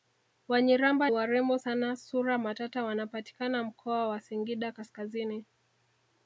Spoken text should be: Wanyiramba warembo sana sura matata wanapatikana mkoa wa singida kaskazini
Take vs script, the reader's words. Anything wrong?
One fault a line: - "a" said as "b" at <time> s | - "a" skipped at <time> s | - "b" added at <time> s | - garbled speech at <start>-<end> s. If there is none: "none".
none